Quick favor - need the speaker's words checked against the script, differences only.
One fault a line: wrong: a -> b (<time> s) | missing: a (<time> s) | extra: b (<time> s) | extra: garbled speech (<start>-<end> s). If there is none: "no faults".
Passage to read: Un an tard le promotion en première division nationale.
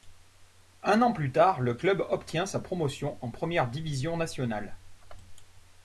extra: plus (1.1 s)
extra: club obtient sa (1.7 s)